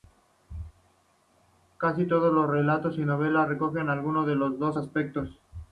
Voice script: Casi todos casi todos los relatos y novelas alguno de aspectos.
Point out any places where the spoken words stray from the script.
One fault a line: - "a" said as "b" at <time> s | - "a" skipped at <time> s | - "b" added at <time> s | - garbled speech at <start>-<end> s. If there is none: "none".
- "casi todos" skipped at 2.3 s
- "recogen" added at 3.5 s
- "los dos" added at 4.3 s